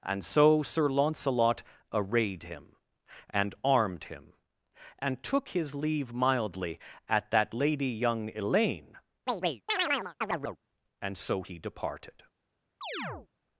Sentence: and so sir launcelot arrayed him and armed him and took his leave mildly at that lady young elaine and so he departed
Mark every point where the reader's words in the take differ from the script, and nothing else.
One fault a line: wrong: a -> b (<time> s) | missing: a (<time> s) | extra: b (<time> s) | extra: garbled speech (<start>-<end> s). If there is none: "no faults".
no faults